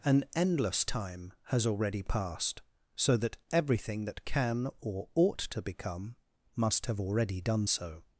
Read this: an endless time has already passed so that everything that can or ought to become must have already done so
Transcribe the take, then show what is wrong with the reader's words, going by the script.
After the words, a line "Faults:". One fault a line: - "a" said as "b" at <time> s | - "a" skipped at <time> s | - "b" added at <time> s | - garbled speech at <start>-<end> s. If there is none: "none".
an endless time has already passed so that everything that can or ought to become must have already done so
Faults:
none